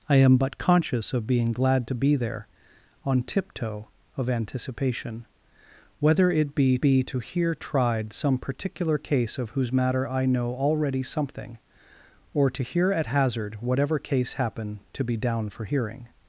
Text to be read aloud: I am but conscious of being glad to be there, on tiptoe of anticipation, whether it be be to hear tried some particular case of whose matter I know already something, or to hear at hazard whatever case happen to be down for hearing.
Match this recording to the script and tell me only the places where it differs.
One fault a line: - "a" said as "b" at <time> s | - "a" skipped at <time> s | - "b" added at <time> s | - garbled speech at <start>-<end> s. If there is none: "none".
none